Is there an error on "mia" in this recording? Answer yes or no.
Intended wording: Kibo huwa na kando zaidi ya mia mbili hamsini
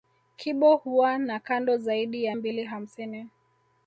yes